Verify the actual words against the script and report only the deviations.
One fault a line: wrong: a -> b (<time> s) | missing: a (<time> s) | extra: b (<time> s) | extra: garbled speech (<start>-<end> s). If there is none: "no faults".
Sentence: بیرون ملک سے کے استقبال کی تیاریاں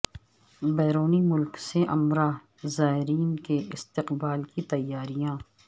extra: عمرہ زائرین (1.9 s)